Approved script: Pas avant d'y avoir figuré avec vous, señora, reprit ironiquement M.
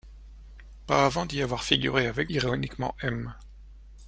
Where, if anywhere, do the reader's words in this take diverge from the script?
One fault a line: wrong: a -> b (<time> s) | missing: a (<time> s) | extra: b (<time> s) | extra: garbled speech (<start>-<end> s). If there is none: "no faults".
missing: vous señora reprit (2.3 s)